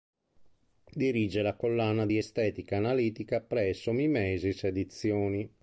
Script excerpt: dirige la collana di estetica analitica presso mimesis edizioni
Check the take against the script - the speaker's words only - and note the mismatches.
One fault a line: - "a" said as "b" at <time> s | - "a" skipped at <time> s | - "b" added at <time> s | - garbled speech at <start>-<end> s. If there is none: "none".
none